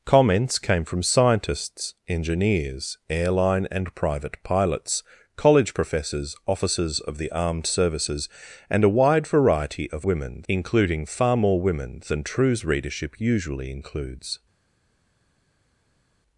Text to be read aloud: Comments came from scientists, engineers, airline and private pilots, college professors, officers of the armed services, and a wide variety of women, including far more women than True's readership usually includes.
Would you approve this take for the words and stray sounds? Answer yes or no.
yes